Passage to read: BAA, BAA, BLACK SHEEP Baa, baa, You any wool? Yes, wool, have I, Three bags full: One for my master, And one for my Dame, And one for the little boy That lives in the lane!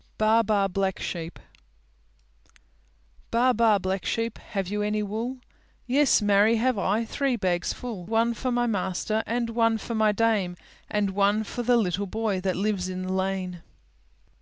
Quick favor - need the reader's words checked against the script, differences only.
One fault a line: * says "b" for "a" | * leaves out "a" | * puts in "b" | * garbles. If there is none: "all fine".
* puts in "Black Sheep Have"
* says "marry" for "wool"